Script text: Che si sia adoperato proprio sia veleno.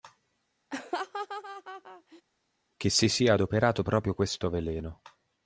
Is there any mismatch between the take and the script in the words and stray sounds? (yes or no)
yes